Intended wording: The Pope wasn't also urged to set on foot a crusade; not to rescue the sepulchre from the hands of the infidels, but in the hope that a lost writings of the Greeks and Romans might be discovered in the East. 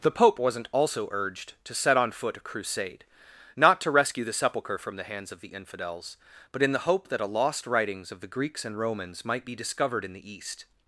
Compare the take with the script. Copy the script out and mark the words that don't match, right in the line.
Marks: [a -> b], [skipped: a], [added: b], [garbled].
The Pope wasn't also urged to set on foot a crusade; not to rescue the sepulchre from the hands of the infidels, but in the hope that a lost writings of the Greeks and Romans might be discovered in the East.